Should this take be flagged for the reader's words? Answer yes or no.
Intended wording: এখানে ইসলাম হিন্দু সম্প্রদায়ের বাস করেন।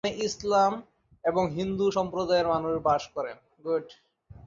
yes